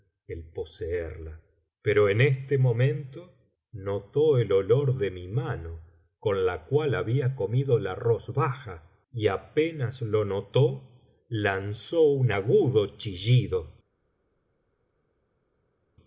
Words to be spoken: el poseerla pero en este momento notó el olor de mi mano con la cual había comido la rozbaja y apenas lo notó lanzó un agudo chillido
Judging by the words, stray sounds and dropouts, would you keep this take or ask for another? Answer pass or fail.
pass